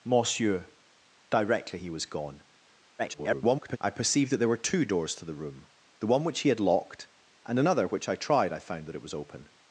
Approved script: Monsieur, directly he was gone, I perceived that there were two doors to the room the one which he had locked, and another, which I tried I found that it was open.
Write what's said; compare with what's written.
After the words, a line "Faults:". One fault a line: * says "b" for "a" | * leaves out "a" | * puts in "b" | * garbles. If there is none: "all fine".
Monsieur, directly he was gone, [garbled] I perceived that there were two doors to the room the one which he had locked, and another, which I tried I found that it was open.
Faults:
* garbles